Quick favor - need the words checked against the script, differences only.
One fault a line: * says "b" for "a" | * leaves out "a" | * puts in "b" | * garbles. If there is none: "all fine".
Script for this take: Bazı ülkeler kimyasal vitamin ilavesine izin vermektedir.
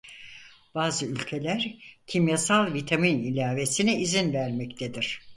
all fine